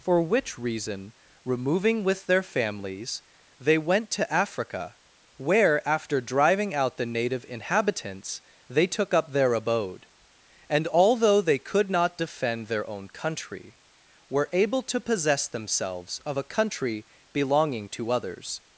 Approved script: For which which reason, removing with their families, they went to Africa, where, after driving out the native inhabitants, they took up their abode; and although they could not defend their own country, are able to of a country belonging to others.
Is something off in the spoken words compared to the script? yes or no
yes